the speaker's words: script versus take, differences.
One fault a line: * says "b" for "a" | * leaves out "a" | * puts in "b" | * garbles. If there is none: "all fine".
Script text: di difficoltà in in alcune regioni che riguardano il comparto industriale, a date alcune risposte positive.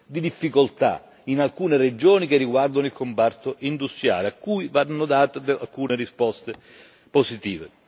* leaves out "in"
* puts in "cui vanno"